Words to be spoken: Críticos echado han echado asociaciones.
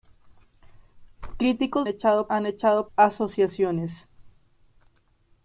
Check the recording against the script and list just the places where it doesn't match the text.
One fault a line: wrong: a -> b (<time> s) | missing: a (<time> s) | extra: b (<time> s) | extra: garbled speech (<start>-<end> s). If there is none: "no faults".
no faults